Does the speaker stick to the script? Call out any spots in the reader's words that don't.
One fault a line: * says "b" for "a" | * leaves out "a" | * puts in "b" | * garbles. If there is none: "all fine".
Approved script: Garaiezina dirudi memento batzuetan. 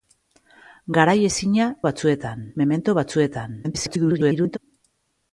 * says "batzuetan" for "dirudi"
* garbles